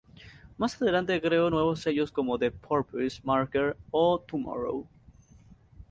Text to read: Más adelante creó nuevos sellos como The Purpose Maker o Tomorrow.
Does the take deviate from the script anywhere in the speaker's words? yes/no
no